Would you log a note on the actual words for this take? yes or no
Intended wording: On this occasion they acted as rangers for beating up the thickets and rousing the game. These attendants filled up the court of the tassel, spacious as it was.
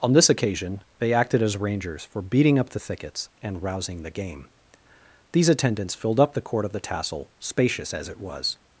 no